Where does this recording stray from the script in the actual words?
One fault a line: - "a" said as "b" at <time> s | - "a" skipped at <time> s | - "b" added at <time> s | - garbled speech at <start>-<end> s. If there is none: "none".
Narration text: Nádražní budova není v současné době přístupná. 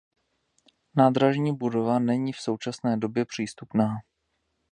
none